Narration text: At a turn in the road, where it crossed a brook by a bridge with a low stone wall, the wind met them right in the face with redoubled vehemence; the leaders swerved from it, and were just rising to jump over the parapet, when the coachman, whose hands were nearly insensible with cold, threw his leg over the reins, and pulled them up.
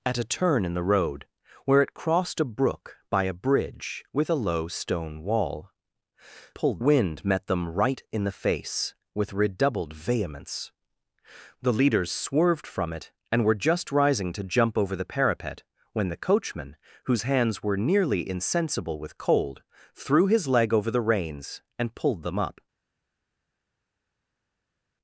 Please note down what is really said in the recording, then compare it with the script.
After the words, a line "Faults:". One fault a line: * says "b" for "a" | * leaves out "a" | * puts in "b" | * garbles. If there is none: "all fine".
At a turn in the road, where it crossed a brook by a bridge with a low stone wall, pulled wind met them right in the face with redoubled vehemence; the leaders swerved from it, and were just rising to jump over the parapet, when the coachman, whose hands were nearly insensible with cold, threw his leg over the reins, and pulled them up.
Faults:
* says "pulled" for "the"